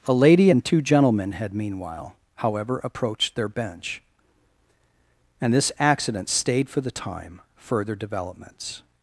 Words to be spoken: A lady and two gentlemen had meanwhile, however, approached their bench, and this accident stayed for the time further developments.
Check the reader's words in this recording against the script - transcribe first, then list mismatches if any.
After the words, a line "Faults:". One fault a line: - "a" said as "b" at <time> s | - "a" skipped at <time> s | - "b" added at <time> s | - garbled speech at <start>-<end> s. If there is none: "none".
A lady and two gentlemen had meanwhile, however, approached their bench, and this accident stayed for the time further developments.
Faults:
none